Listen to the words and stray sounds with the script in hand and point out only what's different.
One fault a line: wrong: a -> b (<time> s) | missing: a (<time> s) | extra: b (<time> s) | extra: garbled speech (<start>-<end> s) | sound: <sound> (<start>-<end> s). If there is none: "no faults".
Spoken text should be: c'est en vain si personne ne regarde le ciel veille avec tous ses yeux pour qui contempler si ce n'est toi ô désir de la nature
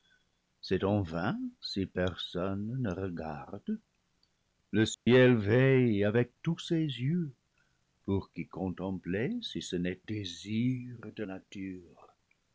sound: dropout (4.9-5.1 s)
missing: toi ô (10.0 s)
missing: la (11.2 s)